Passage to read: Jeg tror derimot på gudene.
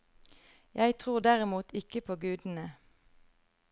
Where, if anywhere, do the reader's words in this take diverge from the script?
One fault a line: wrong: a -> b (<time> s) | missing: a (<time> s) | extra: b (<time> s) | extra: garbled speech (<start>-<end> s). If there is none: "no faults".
extra: ikke (1.7 s)